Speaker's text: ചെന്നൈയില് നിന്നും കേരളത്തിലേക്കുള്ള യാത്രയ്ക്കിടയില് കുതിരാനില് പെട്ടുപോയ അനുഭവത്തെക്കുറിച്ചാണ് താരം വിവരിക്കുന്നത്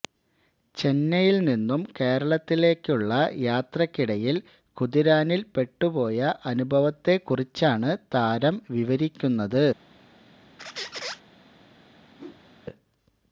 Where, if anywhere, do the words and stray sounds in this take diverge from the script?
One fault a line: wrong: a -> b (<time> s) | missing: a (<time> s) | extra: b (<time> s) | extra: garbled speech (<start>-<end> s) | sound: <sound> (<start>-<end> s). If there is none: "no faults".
sound: squeak (10.6-11.2 s)
sound: whoosh (12.2-12.5 s)